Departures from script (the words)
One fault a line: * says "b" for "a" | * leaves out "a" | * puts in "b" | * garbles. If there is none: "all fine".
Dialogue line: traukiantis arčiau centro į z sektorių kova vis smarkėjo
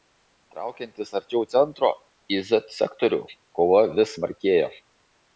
all fine